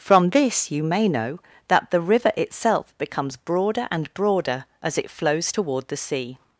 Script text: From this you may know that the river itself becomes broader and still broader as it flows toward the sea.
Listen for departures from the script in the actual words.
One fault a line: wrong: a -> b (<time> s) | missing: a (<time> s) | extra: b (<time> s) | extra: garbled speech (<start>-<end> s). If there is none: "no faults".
missing: still (4.1 s)